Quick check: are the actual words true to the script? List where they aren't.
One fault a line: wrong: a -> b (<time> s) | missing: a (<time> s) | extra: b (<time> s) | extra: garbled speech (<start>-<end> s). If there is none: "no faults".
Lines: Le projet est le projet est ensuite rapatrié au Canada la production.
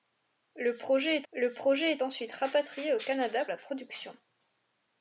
no faults